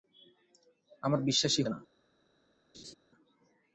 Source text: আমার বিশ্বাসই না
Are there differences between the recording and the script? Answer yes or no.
no